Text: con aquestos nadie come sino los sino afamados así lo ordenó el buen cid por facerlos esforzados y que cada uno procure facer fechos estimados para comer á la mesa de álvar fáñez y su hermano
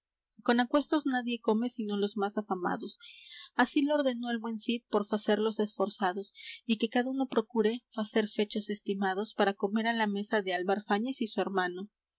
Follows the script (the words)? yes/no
no